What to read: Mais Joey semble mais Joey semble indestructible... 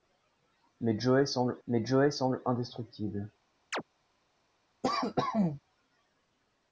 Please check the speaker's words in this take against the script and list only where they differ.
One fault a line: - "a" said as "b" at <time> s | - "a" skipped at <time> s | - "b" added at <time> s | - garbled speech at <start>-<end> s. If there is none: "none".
none